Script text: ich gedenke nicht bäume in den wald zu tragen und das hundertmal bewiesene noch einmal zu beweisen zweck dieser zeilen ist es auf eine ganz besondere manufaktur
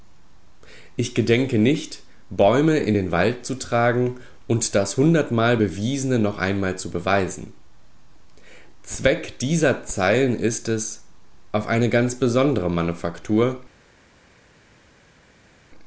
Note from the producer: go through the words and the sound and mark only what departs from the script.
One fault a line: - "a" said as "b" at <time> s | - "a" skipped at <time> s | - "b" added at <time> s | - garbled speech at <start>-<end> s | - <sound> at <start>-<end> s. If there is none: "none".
none